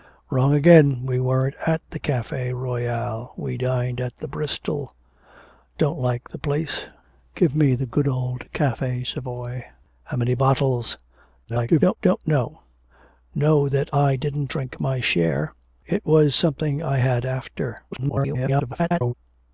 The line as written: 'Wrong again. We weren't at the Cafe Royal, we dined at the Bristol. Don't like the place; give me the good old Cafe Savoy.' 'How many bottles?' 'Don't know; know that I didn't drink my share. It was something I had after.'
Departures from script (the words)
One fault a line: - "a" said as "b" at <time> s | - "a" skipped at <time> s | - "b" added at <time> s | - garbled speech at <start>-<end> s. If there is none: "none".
- garbled speech at 11.4-12.0 s
- garbled speech at 17.9-19.1 s